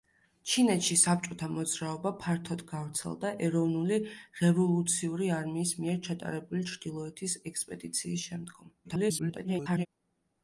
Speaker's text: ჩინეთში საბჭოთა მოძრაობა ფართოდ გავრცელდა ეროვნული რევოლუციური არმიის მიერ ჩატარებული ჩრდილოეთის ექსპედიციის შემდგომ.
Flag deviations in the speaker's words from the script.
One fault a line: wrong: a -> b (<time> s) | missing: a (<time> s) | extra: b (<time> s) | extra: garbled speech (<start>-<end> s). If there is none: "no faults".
extra: garbled speech (8.8-9.9 s)